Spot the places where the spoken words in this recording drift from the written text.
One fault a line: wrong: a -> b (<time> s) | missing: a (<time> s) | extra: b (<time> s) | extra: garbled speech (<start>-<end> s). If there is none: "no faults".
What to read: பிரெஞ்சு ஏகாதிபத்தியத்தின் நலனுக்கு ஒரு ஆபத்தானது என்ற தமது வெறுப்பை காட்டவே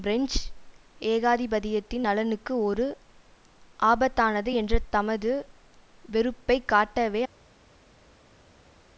no faults